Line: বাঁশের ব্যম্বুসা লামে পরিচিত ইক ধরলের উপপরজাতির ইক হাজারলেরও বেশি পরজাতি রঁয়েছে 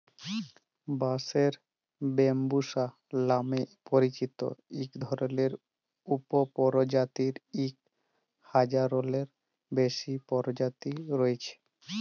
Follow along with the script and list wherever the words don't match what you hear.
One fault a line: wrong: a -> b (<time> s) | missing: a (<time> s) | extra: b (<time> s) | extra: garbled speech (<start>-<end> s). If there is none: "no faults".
no faults